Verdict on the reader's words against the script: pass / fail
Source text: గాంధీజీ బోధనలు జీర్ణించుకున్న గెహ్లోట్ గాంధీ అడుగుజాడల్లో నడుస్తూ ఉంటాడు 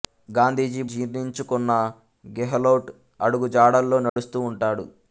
fail